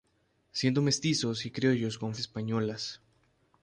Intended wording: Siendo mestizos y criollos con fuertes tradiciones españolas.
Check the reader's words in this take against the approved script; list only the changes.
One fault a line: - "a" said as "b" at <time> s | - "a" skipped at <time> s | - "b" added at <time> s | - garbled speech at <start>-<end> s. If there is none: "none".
- "fuertes tradiciones" skipped at 2.1 s